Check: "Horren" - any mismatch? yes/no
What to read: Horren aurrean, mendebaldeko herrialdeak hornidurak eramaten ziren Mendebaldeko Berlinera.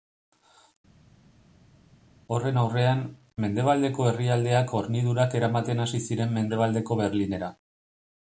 no